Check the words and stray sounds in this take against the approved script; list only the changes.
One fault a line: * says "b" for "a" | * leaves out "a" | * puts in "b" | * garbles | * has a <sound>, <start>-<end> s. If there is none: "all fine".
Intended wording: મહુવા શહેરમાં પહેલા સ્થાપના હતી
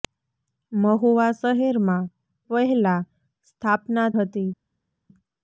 all fine